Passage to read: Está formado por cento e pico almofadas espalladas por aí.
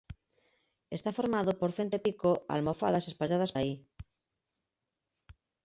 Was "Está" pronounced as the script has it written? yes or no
yes